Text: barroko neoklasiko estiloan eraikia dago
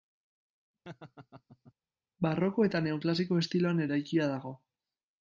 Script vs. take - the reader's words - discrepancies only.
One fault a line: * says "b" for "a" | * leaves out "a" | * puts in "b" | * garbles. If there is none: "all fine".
* puts in "eta"